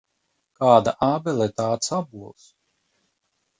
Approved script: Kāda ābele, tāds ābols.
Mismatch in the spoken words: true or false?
false